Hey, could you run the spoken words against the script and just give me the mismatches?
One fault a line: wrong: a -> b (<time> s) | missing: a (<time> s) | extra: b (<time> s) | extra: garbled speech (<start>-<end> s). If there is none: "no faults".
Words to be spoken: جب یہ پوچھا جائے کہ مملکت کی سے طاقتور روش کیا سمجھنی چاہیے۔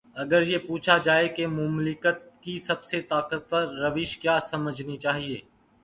wrong: جب -> اگر (0.1 s)
extra: سب (2.6 s)